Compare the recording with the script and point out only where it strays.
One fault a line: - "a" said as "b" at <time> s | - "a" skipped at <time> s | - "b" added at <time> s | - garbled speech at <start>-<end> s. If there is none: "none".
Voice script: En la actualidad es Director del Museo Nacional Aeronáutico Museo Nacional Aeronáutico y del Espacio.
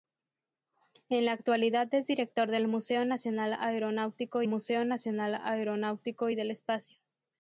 none